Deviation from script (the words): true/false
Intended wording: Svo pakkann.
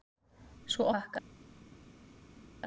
false